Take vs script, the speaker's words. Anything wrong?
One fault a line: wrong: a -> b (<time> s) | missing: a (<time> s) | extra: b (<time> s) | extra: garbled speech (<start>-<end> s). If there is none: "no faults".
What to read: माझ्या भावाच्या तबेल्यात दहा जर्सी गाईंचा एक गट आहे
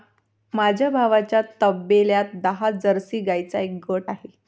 no faults